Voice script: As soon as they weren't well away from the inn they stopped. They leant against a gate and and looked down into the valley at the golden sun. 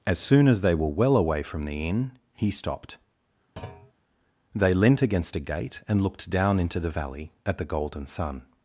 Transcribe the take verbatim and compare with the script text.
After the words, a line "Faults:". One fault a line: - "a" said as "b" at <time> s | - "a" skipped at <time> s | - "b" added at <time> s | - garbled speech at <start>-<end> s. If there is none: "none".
As soon as they were well away from the inn he stopped. They leant against a gate and looked down into the valley at the golden sun.
Faults:
- "weren't" said as "were" at 0.7 s
- "they" said as "he" at 2.3 s
- "and" skipped at 6.0 s